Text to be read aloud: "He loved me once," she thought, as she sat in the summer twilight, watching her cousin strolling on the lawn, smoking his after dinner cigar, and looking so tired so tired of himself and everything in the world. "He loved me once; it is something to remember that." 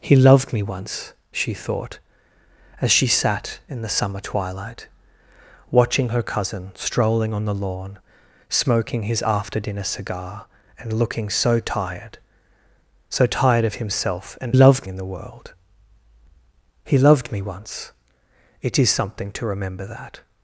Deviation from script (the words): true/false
true